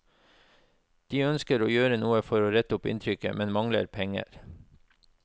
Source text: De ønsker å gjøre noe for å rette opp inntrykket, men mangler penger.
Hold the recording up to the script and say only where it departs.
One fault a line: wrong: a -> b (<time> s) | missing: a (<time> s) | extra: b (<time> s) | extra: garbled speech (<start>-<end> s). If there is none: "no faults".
no faults